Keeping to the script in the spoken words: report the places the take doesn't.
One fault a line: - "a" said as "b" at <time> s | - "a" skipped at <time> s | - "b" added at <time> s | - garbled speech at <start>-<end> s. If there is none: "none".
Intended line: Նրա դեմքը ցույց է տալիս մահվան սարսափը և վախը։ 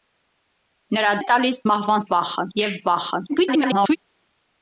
- "դեմքը ցույց" skipped at 1.1 s
- "սարսափը" said as "վախը" at 2.1 s
- garbled speech at 3.3-4.0 s